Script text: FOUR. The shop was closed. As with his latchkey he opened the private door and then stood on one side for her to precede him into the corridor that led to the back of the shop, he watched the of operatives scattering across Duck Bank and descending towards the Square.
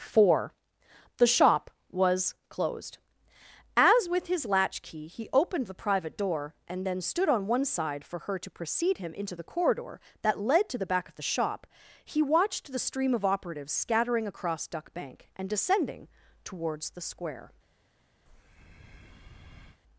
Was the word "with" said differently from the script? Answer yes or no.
no